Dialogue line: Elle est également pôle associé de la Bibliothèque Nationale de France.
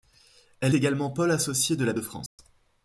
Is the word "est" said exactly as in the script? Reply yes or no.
no